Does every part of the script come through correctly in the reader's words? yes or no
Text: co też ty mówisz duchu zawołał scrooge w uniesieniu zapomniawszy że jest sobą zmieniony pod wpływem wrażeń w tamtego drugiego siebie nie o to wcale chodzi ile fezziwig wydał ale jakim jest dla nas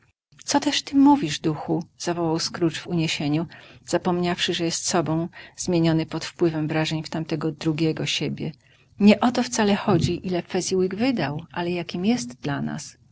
yes